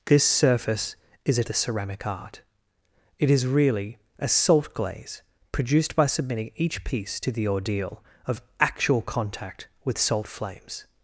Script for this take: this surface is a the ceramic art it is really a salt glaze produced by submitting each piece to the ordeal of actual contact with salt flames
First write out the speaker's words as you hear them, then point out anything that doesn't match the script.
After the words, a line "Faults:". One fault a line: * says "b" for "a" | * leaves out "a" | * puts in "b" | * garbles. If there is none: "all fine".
this surface is a the ceramic art it is really a salt glaze produced by submitting each piece to the ordeal of actual contact with salt flames
Faults:
all fine